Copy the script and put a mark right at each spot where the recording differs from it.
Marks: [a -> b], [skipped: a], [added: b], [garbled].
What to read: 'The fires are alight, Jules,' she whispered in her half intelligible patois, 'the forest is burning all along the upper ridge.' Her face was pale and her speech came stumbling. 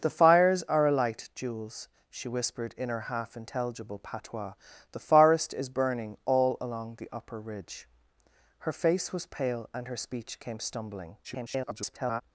'The fires are alight, Jules,' she whispered in her half intelligible patois, 'the forest is burning all along the upper ridge.' Her face was pale and her speech came stumbling. [garbled]